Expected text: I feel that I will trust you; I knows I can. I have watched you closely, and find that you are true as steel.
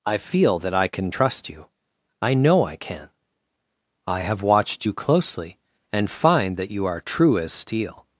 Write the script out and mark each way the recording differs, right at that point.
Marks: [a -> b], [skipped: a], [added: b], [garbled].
I feel that I [will -> can] trust you; I [knows -> know] I can. I have watched you closely, and find that you are true as steel.